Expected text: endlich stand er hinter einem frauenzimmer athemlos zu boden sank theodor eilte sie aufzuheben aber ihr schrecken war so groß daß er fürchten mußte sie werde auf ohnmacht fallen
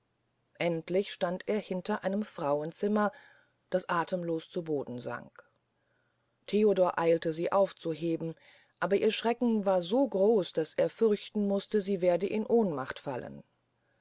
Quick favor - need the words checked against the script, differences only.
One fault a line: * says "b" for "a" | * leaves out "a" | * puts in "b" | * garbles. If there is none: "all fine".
* puts in "das"
* says "in" for "auf"